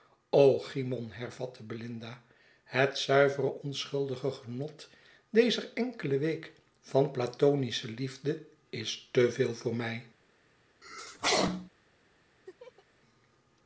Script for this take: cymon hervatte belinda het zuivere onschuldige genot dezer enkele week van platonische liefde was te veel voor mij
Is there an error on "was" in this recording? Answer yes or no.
yes